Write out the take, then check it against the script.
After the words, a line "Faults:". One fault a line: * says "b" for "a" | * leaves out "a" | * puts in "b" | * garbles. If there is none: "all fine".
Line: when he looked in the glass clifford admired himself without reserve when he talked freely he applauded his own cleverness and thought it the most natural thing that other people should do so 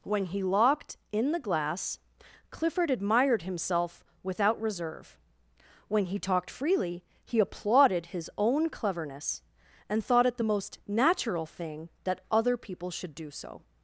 when he locked in the glass clifford admired himself without reserve when he talked freely he applauded his own cleverness and thought it the most natural thing that other people should do so
Faults:
* says "locked" for "looked"